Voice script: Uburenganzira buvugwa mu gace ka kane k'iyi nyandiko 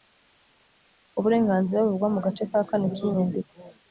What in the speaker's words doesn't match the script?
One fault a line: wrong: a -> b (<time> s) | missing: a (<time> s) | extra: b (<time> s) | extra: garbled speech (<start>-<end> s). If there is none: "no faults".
no faults